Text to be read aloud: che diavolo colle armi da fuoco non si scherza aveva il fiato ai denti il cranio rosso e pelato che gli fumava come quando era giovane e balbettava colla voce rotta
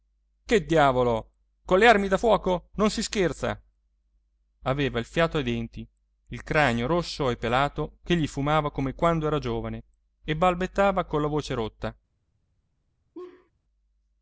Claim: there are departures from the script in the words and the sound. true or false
true